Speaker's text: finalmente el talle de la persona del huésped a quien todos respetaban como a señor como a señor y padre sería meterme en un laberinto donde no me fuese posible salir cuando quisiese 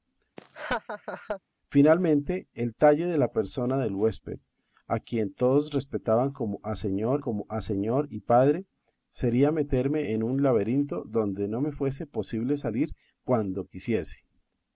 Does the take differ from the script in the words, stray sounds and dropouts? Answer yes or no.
yes